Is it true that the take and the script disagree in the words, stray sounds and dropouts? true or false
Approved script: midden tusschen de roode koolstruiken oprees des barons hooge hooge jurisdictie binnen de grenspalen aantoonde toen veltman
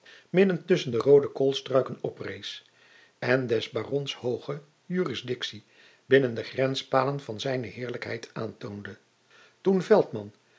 true